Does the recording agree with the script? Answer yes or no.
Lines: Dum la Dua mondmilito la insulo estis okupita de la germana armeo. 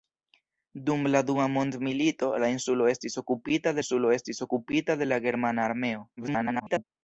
no